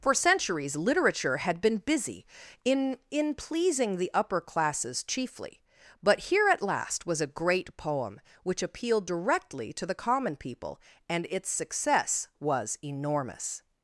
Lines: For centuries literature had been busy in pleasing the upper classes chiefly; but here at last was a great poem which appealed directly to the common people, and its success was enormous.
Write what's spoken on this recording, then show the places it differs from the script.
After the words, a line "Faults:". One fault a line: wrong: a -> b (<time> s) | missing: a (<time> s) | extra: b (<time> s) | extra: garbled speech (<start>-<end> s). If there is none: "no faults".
For centuries literature had been busy in in pleasing the upper classes chiefly; but here at last was a great poem which appealed directly to the common people, and its success was enormous.
Faults:
extra: in (3.1 s)